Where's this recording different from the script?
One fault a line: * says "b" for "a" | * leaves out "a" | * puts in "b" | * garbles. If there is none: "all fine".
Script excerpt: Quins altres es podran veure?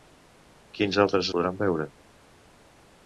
all fine